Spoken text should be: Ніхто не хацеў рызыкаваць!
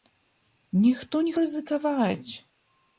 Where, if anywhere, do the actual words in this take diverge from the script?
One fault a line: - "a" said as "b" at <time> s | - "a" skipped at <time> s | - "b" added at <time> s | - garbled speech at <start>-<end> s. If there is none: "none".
- "хацеў" skipped at 1.3 s